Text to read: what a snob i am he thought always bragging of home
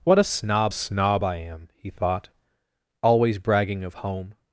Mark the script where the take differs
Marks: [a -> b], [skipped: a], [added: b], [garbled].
what a snob [added: snob] i am he thought always bragging of home